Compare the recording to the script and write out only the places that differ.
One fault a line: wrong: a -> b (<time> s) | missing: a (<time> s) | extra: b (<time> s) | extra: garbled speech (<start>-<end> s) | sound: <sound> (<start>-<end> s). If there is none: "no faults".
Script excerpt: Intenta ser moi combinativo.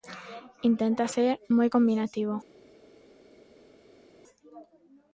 no faults